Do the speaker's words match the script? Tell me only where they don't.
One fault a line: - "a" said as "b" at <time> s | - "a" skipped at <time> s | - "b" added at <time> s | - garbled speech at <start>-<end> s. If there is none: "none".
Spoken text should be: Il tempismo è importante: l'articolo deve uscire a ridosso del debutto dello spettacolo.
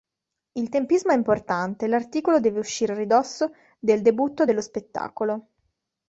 none